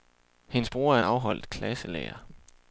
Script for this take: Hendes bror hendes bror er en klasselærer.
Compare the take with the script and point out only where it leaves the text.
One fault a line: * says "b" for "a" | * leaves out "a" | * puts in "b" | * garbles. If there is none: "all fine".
* leaves out "hendes bror"
* puts in "afholdt"